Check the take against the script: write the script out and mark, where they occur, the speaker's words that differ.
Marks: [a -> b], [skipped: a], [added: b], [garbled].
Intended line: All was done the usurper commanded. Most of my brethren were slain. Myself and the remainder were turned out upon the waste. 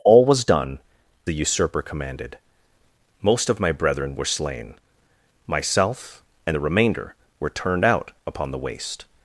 All was done the usurper commanded. Most of my brethren were slain. Myself and the remainder were turned out upon the waste.